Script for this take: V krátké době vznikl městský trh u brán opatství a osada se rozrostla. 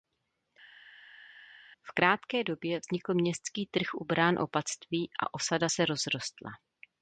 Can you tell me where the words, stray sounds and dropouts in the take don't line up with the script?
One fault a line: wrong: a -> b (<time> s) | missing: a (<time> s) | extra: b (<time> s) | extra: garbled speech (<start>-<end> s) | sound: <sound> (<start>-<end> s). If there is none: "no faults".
no faults